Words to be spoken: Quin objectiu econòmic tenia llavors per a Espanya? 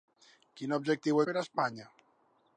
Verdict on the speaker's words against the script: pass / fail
fail